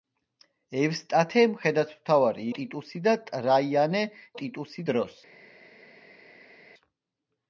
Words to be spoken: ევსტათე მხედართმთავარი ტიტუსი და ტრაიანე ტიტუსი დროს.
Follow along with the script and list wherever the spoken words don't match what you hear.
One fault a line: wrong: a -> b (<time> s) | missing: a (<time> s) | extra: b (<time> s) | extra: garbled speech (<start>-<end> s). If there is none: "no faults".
no faults